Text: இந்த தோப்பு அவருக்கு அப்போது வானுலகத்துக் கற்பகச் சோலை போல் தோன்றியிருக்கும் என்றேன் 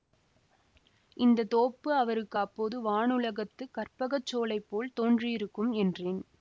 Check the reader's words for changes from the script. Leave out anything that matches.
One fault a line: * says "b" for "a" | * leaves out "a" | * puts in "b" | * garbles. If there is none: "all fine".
all fine